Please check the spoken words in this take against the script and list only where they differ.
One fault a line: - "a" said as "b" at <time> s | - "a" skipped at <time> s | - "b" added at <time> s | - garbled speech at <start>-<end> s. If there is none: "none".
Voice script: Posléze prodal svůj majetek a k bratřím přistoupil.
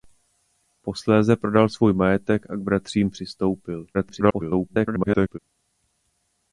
- garbled speech at 3.9-5.4 s